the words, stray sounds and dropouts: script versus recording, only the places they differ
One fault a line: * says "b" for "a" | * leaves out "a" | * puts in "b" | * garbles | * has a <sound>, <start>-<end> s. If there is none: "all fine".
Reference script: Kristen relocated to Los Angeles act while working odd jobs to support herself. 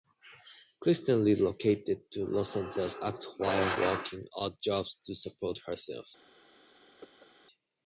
* has a cough, 7.0-7.3 s